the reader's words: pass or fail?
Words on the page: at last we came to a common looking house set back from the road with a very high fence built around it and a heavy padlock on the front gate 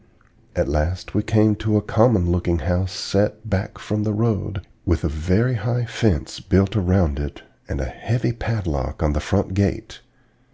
pass